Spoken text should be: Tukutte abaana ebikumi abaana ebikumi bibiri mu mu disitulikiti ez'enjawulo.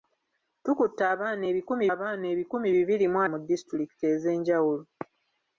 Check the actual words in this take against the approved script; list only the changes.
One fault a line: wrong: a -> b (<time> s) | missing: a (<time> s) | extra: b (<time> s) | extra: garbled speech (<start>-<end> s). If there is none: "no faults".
no faults